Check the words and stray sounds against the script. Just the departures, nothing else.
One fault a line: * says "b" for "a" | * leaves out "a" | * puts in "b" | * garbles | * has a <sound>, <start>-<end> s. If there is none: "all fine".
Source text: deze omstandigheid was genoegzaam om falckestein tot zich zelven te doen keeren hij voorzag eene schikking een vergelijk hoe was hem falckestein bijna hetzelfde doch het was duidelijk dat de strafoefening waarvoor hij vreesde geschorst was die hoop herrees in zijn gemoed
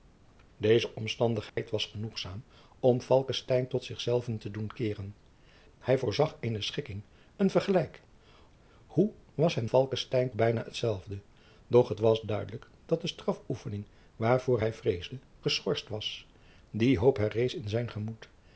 * has a dropout, 1.5-1.6 s